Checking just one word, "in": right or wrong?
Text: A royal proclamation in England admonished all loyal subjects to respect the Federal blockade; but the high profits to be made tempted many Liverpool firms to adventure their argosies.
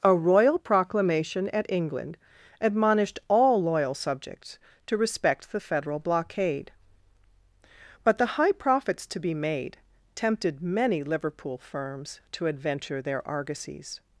wrong